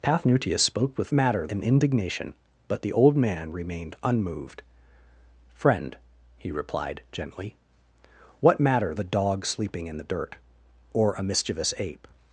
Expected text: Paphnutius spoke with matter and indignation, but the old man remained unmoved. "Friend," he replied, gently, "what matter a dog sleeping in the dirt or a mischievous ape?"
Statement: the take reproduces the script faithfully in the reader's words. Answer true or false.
true